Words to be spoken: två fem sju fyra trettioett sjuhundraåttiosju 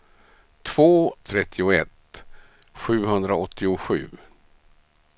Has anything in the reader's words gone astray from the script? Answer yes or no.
yes